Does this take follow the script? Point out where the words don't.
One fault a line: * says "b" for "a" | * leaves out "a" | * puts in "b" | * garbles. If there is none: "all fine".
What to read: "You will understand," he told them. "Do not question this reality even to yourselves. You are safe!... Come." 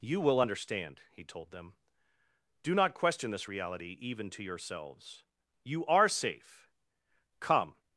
all fine